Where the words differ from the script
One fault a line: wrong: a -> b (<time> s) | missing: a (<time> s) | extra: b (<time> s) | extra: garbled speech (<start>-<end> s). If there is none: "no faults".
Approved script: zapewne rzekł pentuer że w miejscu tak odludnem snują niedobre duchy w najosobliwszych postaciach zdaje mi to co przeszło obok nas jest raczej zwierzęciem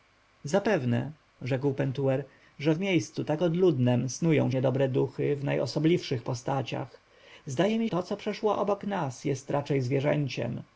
no faults